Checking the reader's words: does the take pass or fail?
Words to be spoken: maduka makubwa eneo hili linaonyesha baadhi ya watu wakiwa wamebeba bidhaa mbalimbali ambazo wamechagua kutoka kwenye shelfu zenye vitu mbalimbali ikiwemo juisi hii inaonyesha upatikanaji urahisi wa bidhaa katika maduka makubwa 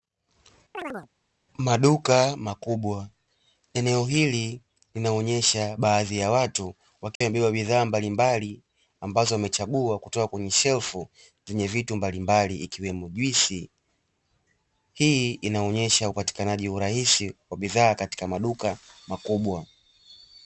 pass